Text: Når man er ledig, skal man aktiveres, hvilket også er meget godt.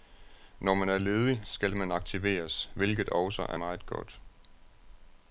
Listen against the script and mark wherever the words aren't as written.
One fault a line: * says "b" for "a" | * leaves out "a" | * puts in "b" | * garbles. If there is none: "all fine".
all fine